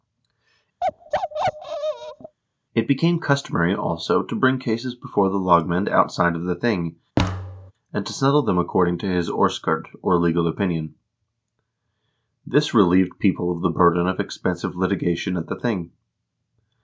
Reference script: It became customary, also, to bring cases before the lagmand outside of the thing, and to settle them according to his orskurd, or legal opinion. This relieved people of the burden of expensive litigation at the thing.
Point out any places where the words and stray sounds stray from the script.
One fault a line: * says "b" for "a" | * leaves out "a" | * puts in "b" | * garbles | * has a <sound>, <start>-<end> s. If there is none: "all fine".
* has a bark, 0.8-2.4 s
* has a thud, 7.2-7.7 s